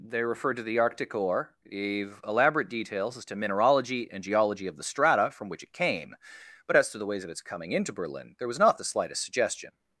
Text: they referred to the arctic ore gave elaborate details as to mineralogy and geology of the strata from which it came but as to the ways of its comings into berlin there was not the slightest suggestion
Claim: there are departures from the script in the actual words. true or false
true